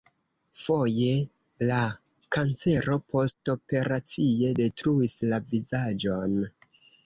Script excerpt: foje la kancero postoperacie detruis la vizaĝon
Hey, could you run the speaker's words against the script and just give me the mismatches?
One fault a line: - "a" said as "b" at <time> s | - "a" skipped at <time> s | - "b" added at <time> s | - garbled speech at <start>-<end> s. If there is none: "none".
none